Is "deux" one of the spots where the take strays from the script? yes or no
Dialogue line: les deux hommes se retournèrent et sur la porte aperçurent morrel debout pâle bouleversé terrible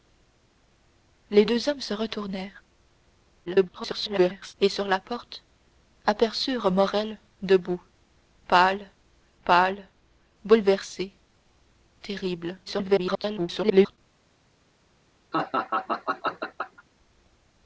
no